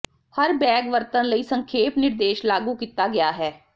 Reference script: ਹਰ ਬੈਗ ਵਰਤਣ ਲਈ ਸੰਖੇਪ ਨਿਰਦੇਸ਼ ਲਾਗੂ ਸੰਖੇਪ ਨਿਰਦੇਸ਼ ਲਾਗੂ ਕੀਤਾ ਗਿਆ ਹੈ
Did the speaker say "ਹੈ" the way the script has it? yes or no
yes